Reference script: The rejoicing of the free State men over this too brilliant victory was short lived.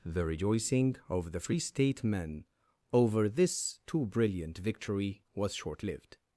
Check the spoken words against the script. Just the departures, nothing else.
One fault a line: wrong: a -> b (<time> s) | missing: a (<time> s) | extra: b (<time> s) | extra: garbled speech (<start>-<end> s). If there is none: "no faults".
no faults